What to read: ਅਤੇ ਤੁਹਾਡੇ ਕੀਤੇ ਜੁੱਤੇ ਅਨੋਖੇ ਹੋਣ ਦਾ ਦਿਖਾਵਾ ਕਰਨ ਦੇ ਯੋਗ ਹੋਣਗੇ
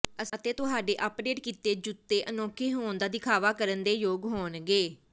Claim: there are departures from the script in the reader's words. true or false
true